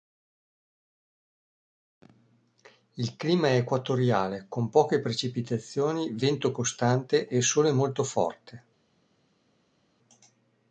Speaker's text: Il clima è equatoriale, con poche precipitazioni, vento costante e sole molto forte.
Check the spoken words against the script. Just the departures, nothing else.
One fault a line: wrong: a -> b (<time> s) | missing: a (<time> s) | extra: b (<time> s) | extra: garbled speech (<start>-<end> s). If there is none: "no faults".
no faults